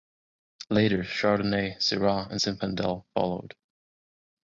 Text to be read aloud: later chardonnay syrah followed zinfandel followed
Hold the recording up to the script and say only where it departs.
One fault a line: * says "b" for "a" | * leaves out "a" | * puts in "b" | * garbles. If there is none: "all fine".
* says "and" for "followed"